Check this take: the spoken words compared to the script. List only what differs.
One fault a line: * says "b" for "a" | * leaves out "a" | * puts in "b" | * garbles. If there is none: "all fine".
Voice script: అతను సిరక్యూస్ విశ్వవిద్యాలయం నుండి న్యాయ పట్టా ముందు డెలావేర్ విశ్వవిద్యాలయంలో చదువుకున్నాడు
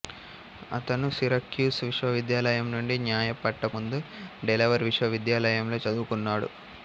all fine